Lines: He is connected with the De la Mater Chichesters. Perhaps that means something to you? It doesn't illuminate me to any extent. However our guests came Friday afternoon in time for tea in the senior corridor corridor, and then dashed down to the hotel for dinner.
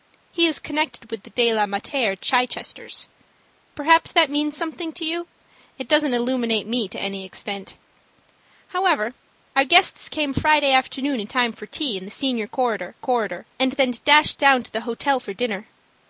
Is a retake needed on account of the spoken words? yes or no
no